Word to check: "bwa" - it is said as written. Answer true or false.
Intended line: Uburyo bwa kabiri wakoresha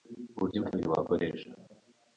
false